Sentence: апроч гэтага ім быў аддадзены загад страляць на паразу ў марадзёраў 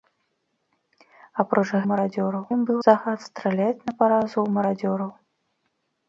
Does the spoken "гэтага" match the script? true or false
false